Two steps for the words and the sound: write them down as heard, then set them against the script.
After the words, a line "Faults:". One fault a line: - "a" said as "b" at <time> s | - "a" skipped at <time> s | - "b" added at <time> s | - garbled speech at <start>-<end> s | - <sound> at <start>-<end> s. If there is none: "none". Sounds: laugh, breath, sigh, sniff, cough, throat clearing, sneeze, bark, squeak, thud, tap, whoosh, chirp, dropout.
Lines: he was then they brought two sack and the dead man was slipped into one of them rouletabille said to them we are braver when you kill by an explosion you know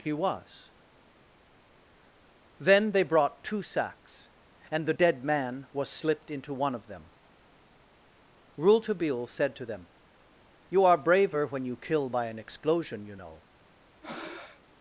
he was then they brought two sacks and the dead man was slipped into one of them rouletabille said to them you are braver when you kill by an explosion you know
Faults:
- "sack" said as "sacks" at 3.6 s
- "we" said as "you" at 10.7 s
- breath at 14.0-14.6 s